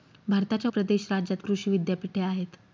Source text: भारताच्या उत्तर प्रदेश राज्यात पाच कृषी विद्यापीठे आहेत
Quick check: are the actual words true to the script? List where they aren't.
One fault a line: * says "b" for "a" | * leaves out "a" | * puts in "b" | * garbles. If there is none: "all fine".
* leaves out "उत्तर"
* leaves out "पाच"